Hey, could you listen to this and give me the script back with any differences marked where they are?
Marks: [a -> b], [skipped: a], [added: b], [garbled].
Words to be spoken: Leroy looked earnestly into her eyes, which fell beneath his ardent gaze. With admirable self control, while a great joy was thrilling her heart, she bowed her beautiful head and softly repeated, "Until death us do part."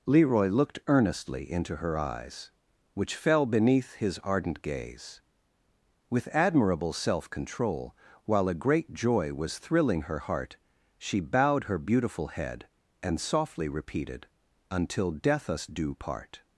Leroy looked earnestly into her eyes, which fell beneath his ardent gaze. With admirable self control, while a great joy was thrilling her heart, she bowed her beautiful head and softly repeated, "Until death us do part."